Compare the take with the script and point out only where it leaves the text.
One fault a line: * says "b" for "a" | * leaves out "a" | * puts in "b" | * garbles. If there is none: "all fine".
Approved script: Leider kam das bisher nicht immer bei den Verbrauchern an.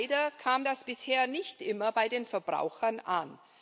all fine